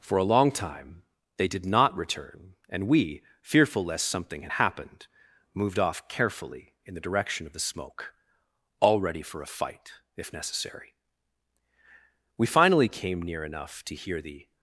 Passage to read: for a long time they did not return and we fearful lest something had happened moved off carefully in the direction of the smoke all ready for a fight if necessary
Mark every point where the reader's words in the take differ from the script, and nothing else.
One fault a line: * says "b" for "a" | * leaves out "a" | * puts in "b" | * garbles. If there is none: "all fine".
* puts in "we finally came near enough to hear the"